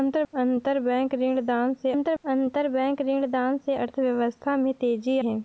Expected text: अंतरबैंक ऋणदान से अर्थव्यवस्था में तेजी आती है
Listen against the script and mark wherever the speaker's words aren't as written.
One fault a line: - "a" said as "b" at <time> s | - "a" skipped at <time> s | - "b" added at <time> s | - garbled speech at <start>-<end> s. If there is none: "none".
- "अंतरबैंक ऋणदान से" added at 1.9 s
- "आती" skipped at 5.2 s